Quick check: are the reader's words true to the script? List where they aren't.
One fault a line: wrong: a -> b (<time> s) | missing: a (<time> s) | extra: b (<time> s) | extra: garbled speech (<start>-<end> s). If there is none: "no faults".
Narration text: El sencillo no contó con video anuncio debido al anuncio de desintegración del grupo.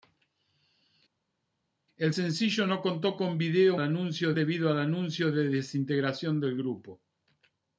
no faults